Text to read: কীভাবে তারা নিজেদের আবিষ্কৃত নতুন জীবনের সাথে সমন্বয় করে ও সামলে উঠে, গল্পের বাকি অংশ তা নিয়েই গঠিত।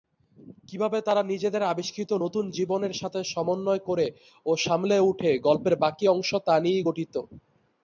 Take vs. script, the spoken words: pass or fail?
pass